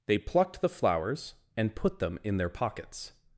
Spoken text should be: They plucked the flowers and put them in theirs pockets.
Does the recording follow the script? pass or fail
fail